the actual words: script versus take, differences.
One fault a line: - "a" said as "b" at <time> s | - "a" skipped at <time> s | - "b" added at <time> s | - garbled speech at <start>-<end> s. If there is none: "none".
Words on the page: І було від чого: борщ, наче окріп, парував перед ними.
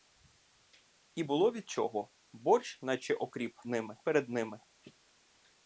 - "парував" said as "ними" at 3.7 s